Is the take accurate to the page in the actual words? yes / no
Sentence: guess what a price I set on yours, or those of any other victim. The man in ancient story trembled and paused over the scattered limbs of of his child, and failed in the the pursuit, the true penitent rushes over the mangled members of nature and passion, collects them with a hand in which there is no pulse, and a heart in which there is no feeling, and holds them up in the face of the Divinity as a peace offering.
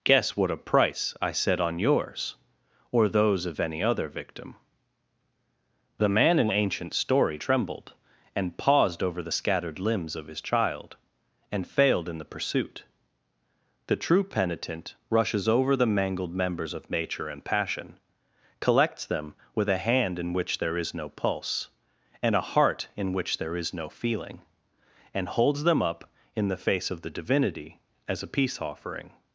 no